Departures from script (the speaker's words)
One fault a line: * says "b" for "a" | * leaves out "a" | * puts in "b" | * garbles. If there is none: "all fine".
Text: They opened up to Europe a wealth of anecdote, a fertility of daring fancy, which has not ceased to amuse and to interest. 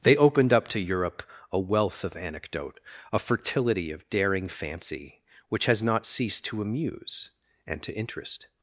all fine